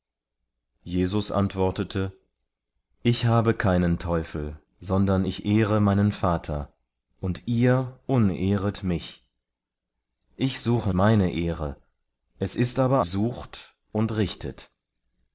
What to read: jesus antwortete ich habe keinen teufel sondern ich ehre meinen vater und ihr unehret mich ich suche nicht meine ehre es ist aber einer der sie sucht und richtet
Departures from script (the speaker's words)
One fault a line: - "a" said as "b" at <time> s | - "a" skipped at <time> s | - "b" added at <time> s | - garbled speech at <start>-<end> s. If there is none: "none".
- "nicht" skipped at 10.9 s
- "einer der sie" skipped at 13.1 s